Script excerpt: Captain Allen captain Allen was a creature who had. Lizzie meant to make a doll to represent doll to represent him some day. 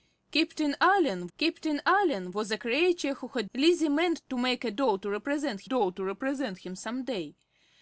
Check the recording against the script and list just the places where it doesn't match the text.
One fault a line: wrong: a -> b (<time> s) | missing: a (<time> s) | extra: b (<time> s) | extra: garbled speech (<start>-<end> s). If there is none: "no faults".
no faults